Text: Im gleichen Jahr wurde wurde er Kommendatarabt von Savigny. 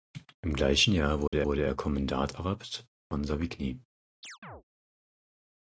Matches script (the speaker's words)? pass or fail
pass